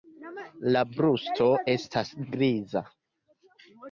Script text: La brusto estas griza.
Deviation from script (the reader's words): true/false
false